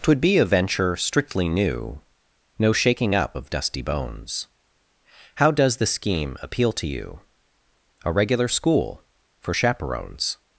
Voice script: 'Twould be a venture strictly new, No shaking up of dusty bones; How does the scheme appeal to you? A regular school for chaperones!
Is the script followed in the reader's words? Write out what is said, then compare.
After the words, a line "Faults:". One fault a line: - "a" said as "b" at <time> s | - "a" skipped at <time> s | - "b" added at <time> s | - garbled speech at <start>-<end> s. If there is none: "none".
'Twould be a venture strictly new, No shaking up of dusty bones; How does the scheme appeal to you? A regular school for chaperones!
Faults:
none